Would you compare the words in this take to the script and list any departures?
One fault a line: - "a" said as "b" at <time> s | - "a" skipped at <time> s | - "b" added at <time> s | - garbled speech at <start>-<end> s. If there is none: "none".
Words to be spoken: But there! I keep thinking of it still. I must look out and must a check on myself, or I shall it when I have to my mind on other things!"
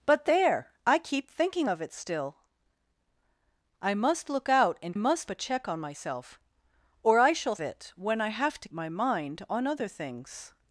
none